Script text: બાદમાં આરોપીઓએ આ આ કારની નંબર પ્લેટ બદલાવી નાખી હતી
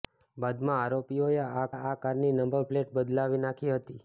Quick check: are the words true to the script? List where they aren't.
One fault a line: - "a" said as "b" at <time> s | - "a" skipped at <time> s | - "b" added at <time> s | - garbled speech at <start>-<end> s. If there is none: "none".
none